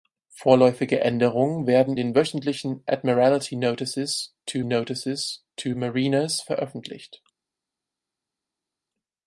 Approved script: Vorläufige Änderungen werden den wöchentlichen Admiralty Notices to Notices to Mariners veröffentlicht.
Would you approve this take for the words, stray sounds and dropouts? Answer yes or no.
yes